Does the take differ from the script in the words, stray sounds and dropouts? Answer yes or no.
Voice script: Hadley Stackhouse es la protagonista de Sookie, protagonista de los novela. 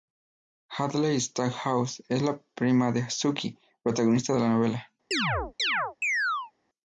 yes